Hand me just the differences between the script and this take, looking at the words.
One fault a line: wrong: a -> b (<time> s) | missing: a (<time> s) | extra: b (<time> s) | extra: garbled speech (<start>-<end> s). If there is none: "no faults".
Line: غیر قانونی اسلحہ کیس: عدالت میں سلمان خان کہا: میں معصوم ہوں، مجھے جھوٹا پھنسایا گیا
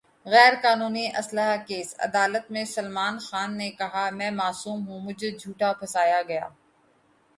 extra: نے (3.6 s)